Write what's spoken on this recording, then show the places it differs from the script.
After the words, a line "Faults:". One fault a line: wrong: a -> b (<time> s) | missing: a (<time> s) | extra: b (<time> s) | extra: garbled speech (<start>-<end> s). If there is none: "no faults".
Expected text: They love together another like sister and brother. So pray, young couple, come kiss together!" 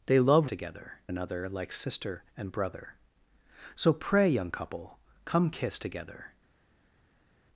They love together another like sister and brother. So pray, young couple, come kiss together!"
Faults:
no faults